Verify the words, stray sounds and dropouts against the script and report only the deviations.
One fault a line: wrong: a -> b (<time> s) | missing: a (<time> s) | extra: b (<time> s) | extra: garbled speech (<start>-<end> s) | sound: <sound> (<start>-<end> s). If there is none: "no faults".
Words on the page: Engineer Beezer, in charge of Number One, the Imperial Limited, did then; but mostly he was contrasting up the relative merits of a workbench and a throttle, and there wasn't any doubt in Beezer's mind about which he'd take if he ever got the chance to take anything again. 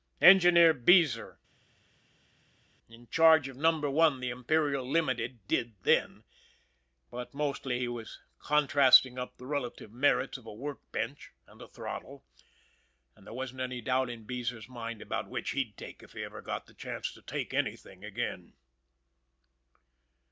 no faults